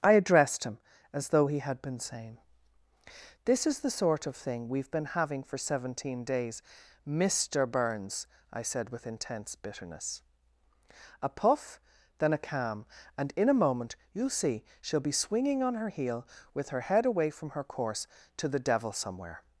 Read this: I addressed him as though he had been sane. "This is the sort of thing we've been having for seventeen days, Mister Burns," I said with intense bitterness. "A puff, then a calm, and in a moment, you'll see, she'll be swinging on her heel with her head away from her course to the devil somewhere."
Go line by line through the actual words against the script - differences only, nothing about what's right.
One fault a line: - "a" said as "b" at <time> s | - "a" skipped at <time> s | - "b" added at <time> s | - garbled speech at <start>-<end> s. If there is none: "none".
none